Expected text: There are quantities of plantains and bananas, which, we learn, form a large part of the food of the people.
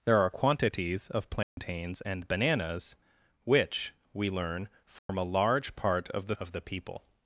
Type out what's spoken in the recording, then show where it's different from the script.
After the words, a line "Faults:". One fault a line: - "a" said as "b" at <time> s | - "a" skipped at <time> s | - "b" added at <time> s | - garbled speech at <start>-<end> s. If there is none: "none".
There are quantities of plantains and bananas, which, we learn, form a large part of the of the people.
Faults:
- "food" skipped at 6.4 s